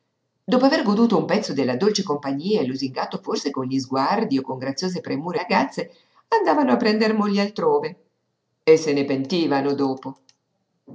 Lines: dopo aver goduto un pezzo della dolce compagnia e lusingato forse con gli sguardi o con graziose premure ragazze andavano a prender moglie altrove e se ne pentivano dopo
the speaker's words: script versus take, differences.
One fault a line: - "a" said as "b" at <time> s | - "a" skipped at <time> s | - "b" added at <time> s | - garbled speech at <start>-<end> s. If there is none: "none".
none